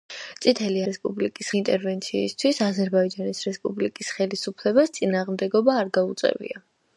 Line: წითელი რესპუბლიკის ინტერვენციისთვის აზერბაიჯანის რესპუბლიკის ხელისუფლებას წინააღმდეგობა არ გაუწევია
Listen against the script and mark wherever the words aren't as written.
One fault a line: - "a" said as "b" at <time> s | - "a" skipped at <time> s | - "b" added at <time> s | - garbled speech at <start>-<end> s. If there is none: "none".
none